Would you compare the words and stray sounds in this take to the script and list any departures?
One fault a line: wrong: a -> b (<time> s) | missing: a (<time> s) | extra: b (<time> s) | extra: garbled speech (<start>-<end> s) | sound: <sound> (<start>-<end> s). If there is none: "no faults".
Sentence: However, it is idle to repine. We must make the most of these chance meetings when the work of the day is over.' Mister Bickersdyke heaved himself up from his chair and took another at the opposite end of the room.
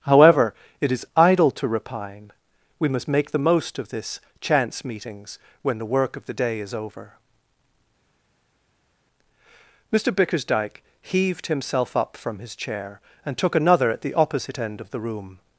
wrong: these -> this (3.9 s)